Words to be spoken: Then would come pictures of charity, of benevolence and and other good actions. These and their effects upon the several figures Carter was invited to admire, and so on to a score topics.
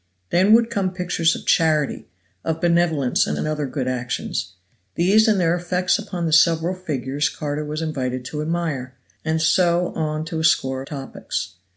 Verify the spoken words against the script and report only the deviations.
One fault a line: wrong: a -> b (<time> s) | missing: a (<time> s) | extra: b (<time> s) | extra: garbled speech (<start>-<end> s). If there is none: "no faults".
no faults